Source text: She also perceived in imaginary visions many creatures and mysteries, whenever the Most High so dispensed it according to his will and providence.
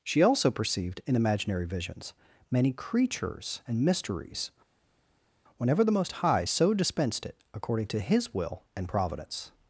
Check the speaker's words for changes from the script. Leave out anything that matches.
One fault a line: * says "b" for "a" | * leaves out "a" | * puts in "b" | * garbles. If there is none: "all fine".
all fine